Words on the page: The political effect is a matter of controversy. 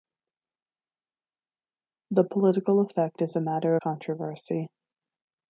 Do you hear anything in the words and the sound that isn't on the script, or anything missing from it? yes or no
yes